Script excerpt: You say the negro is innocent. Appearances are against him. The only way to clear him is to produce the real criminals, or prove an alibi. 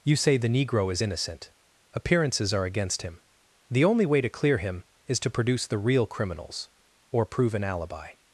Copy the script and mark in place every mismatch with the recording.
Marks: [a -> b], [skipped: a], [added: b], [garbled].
You say the negro is innocent. Appearances are against him. The only way to clear him is to produce the real criminals, or prove an alibi.